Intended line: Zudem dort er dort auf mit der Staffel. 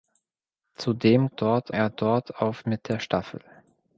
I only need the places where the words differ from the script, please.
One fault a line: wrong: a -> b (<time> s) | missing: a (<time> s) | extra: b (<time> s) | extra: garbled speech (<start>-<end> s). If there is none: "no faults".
no faults